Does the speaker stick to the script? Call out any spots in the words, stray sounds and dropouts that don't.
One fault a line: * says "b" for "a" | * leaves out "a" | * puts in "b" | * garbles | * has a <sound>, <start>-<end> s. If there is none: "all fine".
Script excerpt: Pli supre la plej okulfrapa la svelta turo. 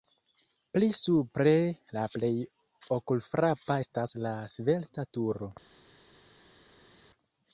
* puts in "estas"